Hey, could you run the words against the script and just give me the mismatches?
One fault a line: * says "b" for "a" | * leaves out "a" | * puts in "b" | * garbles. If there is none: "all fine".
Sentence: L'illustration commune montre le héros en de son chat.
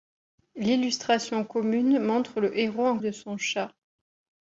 all fine